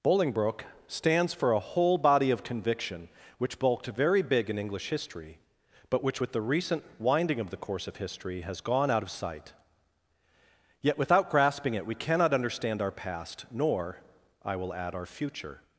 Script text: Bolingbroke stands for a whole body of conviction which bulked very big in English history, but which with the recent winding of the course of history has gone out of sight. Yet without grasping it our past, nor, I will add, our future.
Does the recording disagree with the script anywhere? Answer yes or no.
yes